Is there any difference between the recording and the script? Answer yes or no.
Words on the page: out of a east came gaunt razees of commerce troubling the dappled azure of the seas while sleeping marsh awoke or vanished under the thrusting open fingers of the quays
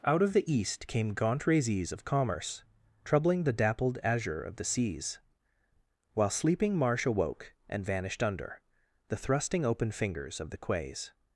yes